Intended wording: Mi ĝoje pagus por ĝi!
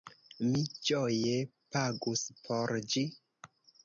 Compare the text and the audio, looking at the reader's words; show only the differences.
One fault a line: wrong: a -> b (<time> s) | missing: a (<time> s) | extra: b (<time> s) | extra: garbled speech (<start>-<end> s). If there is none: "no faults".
no faults